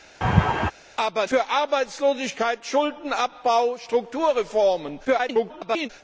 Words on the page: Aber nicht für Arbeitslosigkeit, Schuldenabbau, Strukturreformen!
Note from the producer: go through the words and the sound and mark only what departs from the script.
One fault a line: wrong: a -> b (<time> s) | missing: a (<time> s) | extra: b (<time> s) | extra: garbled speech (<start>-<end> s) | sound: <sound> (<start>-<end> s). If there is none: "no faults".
sound: laugh (0.2-0.7 s)
missing: nicht (1.3 s)
extra: garbled speech (5.0-5.9 s)